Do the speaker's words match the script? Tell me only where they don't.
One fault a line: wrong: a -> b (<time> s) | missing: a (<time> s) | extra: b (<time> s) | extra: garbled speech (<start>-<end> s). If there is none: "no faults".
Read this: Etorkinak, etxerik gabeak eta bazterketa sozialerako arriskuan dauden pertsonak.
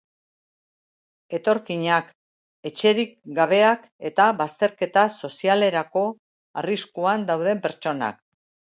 no faults